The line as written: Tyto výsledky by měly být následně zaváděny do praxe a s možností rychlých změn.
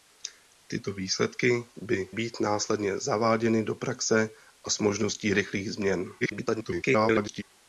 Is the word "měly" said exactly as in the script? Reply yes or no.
no